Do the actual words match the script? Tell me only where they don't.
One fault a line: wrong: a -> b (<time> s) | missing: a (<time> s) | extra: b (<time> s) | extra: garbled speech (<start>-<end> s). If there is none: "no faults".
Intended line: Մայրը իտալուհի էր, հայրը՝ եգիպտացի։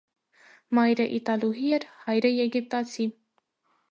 no faults